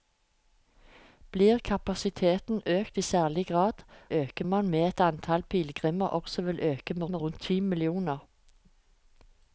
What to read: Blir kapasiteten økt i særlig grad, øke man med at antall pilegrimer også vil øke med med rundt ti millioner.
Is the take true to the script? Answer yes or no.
yes